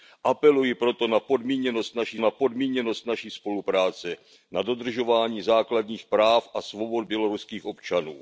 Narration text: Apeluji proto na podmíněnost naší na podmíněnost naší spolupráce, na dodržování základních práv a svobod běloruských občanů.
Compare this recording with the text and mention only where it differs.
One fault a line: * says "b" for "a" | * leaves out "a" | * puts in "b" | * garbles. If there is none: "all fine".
all fine